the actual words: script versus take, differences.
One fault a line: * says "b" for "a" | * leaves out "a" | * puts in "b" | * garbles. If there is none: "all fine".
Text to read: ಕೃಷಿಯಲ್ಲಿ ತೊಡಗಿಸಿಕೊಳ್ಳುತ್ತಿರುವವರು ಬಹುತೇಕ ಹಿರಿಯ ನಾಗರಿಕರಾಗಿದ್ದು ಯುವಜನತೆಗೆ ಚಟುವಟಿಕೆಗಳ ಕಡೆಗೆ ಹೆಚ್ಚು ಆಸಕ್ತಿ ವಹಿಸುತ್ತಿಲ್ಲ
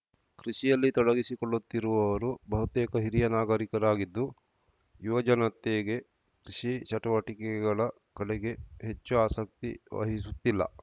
* puts in "ಕೃಷಿ"